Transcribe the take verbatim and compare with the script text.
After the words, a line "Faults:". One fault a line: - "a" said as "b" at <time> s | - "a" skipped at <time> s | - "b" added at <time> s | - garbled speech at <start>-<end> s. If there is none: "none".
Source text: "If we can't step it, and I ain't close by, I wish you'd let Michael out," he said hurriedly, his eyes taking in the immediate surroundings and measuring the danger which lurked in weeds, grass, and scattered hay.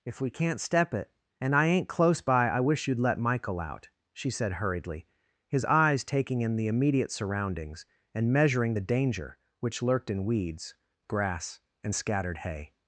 "If we can't step it, and I ain't close by, I wish you'd let Michael out," she said hurriedly, his eyes taking in the immediate surroundings and measuring the danger which lurked in weeds, grass, and scattered hay.
Faults:
- "he" said as "she" at 4.1 s